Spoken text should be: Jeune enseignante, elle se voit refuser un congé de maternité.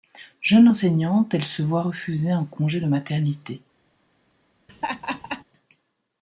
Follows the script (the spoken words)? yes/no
yes